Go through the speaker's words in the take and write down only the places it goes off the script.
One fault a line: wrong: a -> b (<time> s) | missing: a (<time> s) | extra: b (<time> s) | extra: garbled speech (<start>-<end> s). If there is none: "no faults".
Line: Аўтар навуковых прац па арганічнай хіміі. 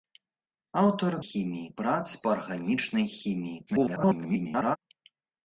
wrong: навуковых -> хіміі (1.3 s)
extra: garbled speech (3.7-4.8 s)